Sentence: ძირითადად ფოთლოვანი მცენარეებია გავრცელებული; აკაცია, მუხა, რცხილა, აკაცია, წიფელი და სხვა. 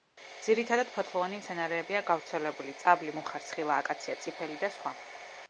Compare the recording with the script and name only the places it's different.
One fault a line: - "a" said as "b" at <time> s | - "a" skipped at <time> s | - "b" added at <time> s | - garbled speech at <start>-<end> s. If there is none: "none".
- "აკაცია" said as "წაბლი" at 2.9 s